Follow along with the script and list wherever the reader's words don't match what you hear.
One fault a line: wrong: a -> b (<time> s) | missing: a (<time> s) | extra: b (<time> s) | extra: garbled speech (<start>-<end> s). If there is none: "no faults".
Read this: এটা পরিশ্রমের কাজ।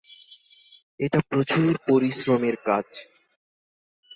extra: প্রচুর (1.3 s)